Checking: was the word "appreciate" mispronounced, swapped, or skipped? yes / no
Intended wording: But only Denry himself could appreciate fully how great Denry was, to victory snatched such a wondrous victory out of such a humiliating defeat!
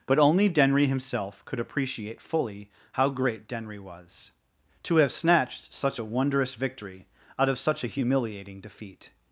no